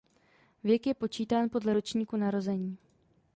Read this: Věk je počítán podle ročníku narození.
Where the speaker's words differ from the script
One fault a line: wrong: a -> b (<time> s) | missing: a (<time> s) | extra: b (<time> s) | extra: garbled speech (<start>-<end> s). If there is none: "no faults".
no faults